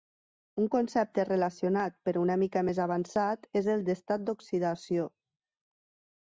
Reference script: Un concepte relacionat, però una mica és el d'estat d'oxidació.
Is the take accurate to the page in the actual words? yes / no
no